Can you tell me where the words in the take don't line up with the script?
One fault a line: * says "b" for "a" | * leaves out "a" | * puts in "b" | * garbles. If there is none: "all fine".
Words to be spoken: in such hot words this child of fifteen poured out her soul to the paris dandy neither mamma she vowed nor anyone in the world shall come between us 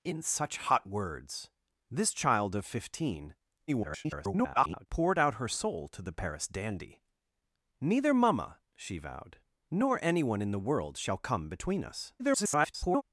* garbles
* garbles